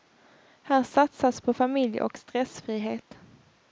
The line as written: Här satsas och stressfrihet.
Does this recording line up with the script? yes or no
no